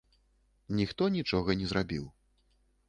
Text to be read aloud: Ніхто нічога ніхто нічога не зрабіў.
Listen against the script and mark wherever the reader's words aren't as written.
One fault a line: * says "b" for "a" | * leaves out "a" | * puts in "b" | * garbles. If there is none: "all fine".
* leaves out "ніхто нічога"